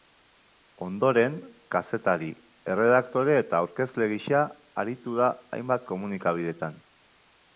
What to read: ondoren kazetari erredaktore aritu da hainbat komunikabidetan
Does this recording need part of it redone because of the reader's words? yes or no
yes